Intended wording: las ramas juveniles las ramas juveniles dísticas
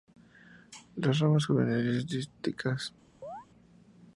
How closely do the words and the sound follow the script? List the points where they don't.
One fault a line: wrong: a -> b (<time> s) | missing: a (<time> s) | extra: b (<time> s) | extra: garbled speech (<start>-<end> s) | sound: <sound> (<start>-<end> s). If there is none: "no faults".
missing: las ramas juveniles (2.1 s)
sound: chirp (3.2-3.5 s)